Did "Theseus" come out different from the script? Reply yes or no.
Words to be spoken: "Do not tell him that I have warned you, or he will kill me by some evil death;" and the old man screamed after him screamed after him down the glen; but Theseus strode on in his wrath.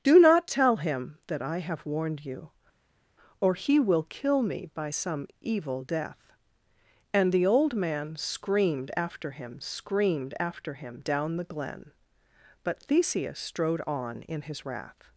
no